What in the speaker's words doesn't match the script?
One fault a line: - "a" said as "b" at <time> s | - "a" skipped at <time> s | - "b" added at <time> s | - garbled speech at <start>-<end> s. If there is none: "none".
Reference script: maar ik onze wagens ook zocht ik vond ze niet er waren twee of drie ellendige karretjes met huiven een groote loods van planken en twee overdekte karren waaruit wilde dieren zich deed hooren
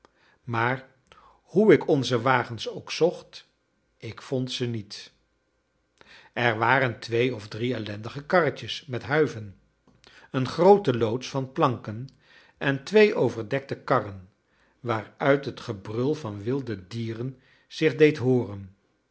- "hoe" added at 1.4 s
- "het gebrul van" added at 15.4 s